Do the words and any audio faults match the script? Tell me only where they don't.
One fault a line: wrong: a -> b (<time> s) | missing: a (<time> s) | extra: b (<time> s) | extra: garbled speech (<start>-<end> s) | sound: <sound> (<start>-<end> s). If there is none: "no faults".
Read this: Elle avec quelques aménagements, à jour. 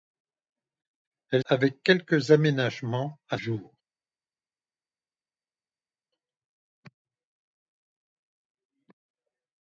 no faults